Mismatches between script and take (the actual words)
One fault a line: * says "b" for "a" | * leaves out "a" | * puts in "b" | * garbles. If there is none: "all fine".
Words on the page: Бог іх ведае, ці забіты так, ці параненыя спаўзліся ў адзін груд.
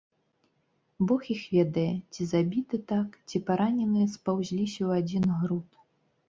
all fine